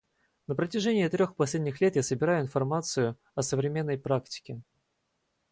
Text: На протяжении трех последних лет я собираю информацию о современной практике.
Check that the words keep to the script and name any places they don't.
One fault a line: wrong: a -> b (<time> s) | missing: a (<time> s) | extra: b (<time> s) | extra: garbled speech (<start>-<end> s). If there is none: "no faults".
no faults